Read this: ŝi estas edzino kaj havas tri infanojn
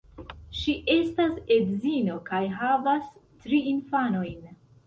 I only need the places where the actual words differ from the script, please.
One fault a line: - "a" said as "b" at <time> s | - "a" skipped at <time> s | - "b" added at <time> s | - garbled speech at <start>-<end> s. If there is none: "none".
none